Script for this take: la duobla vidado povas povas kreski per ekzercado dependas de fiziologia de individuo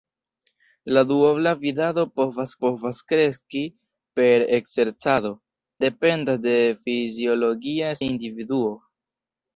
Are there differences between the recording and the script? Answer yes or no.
no